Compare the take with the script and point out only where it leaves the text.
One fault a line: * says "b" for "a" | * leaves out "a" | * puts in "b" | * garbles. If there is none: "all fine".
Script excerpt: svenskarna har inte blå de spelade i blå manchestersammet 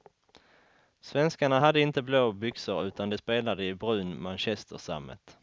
* says "hade" for "har"
* puts in "byxor utan"
* says "brun" for "blå"